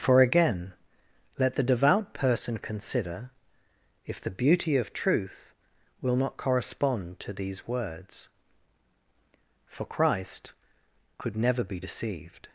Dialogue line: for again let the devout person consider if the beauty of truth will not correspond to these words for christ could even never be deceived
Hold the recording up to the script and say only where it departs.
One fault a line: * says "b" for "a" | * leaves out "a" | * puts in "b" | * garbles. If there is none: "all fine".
* leaves out "even"